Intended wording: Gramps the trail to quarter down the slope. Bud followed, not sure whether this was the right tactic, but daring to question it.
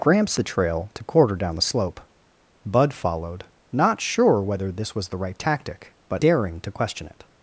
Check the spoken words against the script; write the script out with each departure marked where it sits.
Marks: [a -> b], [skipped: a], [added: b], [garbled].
Gramps the trail to quarter down the slope. Bud followed, not sure whether this was the right tactic, but daring to question it.